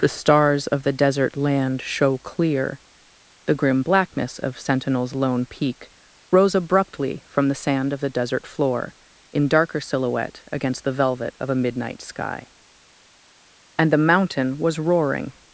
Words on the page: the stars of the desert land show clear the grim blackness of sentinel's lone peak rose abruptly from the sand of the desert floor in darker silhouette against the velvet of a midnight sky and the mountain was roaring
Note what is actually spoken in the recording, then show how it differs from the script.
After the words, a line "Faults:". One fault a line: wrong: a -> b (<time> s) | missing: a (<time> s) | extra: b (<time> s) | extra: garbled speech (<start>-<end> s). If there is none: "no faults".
the stars of the desert land show clear the grim blackness of sentinel's lone peak rose abruptly from the sand of the desert floor in darker silhouette against the velvet of a midnight sky and the mountain was roaring
Faults:
no faults